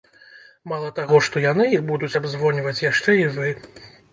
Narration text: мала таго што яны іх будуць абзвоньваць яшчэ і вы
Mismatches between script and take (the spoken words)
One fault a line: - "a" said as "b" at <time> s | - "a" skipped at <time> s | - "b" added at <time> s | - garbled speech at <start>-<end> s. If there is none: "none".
none